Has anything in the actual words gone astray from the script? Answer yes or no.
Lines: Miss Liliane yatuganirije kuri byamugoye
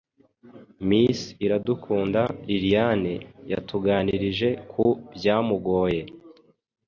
yes